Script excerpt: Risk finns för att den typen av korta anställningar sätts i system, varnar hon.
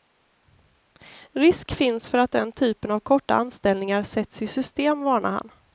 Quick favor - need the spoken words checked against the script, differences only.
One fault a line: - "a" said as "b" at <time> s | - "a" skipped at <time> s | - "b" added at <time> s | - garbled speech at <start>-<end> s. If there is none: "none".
- "hon" said as "han" at 5.3 s